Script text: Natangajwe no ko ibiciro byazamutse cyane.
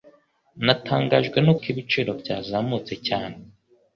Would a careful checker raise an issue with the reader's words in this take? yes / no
no